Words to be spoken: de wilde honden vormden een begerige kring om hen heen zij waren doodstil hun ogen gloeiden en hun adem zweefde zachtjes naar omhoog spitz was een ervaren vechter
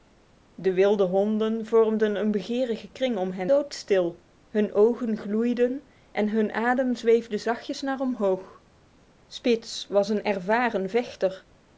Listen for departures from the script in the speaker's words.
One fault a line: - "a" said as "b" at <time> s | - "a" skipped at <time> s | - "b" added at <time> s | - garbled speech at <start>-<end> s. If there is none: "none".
- "heen zij waren" skipped at 3.5 s